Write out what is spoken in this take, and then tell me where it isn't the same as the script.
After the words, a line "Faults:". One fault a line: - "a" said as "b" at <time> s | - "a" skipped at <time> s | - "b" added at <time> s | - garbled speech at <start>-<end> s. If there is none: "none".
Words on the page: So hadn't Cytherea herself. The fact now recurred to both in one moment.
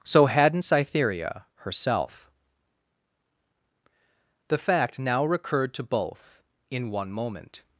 So hadn't Cytherea herself. The fact now recurred to both in one moment.
Faults:
none